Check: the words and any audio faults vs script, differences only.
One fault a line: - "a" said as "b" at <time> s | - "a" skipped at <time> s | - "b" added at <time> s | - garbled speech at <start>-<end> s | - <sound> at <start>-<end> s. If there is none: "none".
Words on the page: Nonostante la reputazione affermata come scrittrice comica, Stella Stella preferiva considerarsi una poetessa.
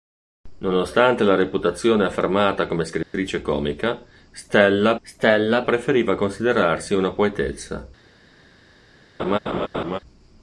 - dropout at 3.0-3.1 s
- laugh at 9.2-10.0 s